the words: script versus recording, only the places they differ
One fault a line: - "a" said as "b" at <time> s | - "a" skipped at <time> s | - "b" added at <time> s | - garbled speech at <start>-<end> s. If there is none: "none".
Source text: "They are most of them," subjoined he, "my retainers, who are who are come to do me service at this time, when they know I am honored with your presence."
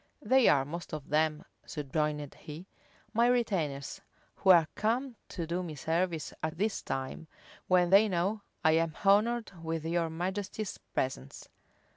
- "who are" skipped at 4.7 s
- "majesty's" added at 10.1 s